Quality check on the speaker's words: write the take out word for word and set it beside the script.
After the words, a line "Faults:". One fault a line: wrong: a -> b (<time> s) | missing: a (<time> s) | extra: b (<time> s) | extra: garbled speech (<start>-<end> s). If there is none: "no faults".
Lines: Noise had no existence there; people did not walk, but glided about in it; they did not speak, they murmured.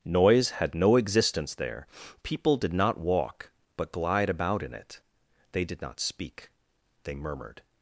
Noise had no existence there; people did not walk, but glide about in it; they did not speak, they murmured.
Faults:
wrong: glided -> glide (3.9 s)